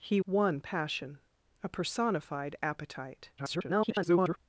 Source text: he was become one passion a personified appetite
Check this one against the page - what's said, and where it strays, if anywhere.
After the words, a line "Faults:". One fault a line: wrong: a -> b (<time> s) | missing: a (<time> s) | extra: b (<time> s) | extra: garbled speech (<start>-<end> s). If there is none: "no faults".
he one passion a personified appetite [garbled]
Faults:
missing: was become (0.2 s)
extra: garbled speech (3.4-4.4 s)